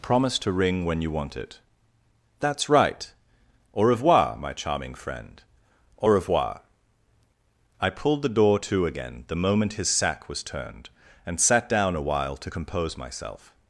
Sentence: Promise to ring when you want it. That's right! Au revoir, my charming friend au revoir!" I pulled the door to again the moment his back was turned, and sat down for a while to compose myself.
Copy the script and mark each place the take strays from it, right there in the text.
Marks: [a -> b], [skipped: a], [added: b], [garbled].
Promise to ring when you want it. That's right! Au revoir, my charming friend au revoir!" I pulled the door to again the moment his [back -> sack] was turned, and sat down [skipped: for] a while to compose myself.